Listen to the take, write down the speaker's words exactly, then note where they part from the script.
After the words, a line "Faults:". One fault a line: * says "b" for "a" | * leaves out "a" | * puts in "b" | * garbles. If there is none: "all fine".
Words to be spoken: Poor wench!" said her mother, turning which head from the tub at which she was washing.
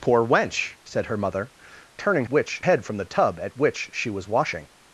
Poor wench!" said her mother, turning which head from the tub at which she was washing.
Faults:
all fine